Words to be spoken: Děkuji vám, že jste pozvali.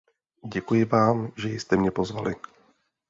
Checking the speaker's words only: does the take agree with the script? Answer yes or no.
no